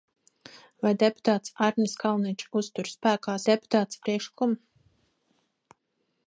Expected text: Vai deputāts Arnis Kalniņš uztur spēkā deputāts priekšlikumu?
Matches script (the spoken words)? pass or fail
pass